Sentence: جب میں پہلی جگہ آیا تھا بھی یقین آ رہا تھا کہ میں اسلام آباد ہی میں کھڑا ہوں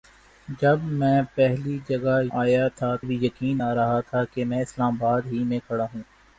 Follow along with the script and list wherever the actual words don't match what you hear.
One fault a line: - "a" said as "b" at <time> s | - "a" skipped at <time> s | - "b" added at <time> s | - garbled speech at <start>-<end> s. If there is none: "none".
none